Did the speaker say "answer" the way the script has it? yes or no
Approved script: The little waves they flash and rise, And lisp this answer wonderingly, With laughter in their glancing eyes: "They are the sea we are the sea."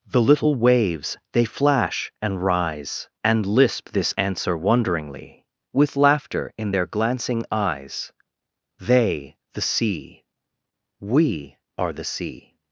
yes